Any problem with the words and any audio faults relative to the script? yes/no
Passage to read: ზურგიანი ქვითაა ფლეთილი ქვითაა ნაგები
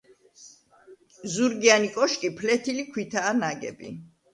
yes